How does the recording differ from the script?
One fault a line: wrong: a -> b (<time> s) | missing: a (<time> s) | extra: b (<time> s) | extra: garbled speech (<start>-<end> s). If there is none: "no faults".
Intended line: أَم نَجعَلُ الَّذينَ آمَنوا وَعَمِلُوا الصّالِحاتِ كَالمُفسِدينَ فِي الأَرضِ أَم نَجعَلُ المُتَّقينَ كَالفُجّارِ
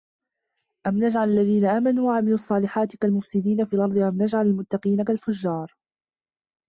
no faults